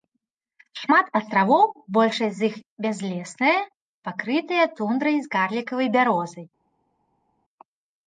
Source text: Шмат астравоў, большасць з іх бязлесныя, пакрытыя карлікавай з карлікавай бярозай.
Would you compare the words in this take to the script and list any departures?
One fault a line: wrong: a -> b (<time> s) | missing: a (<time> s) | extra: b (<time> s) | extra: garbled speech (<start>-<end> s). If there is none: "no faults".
wrong: карлікавай -> тундрай (4.8 s)